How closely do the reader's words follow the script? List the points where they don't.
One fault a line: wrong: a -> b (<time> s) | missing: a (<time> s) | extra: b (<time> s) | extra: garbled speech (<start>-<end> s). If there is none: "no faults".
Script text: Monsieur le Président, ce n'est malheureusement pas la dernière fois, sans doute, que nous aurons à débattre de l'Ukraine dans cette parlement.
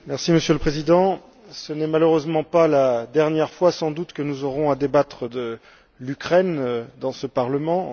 wrong: cette -> ce (7.1 s)